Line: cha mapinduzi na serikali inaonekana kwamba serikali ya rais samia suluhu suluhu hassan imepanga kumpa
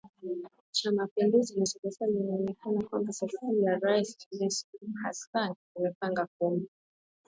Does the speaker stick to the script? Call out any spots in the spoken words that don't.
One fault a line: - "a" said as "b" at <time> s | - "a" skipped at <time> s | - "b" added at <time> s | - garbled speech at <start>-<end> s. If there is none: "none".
- "suluhu" skipped at 4.9 s